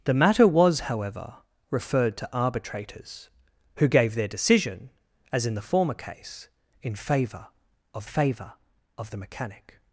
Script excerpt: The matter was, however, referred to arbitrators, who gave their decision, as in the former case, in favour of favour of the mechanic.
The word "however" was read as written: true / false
true